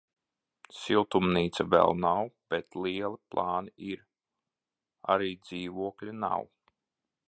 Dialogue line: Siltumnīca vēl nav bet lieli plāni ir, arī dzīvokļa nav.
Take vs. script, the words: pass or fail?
pass